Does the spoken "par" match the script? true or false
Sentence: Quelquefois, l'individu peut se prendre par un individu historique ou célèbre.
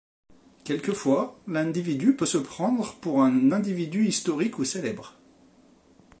false